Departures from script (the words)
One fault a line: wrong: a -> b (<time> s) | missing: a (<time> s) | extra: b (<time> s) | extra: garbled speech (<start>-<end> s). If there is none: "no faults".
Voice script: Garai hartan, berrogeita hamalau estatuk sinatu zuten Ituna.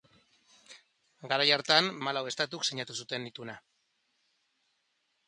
missing: berrogeita (1.9 s)